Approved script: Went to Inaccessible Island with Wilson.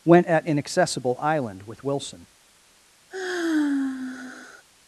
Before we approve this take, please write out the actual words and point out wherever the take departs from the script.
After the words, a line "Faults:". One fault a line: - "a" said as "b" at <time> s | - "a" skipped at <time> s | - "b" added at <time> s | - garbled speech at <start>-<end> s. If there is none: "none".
Went at Inaccessible Island with Wilson.
Faults:
- "to" said as "at" at 0.2 s